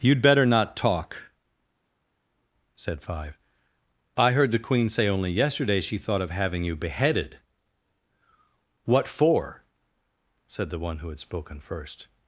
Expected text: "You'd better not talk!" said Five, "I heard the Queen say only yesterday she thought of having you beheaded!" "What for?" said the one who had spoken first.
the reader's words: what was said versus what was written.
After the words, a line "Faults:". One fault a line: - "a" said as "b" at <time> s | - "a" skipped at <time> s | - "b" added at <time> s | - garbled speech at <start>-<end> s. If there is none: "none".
"You'd better not talk!" said Five, "I heard the Queen say only yesterday she thought of having you beheaded!" "What for?" said the one who had spoken first.
Faults:
none